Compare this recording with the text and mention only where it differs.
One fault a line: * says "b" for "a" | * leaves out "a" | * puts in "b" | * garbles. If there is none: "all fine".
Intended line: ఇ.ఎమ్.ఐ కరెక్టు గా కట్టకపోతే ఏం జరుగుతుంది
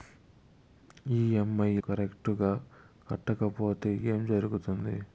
all fine